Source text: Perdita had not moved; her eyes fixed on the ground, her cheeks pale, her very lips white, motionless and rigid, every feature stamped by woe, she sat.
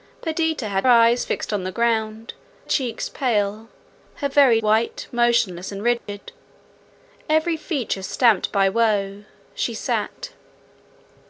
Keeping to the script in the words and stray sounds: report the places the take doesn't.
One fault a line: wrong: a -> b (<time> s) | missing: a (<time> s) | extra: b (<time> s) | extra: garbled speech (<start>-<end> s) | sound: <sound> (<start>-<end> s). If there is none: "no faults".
missing: not moved her (0.9 s)
missing: her (2.3 s)
missing: lips (4.6 s)
sound: dropout (6.0-6.1 s)